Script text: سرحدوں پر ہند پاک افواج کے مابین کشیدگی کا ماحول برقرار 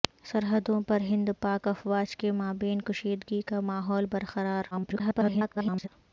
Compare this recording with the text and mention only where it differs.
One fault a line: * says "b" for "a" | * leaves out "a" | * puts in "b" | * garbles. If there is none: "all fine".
* garbles